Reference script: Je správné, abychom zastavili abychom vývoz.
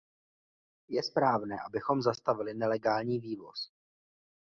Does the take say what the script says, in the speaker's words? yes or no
no